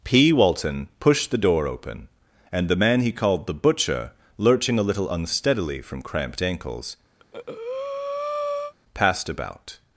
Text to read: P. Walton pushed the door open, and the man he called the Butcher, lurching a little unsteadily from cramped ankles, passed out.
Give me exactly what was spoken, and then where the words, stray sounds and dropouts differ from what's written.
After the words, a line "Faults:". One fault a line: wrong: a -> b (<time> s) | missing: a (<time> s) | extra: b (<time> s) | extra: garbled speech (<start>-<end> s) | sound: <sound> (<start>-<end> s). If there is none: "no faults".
P. Walton pushed the door open, and the man he called the Butcher, lurching a little unsteadily from cramped ankles, passed about.
Faults:
sound: breath (7.2-8.7 s)
wrong: out -> about (9.3 s)